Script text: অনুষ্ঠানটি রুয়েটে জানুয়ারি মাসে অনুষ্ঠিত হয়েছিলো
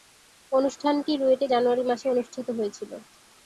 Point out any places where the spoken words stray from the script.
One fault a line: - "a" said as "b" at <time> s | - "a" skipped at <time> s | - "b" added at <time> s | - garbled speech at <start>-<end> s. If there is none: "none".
none